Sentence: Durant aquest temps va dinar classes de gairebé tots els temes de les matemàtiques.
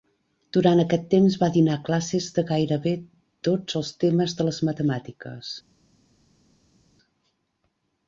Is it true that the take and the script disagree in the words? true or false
false